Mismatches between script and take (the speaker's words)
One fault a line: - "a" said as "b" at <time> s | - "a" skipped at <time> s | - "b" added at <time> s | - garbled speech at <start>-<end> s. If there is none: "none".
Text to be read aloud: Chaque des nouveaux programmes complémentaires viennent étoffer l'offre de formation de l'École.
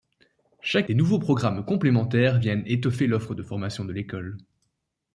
none